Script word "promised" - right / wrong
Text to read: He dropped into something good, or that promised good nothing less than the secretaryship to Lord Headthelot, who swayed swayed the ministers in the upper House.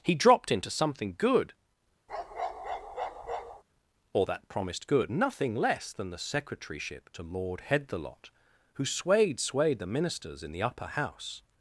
right